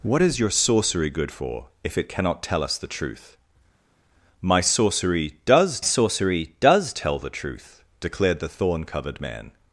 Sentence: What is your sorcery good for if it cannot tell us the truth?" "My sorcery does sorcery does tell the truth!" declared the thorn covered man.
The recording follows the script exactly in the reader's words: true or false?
true